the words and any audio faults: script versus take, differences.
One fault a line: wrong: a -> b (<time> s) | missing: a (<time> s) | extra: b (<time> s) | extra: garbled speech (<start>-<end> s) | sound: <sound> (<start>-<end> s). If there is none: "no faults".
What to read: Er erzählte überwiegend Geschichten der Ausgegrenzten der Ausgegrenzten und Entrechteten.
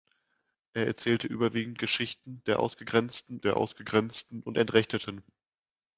no faults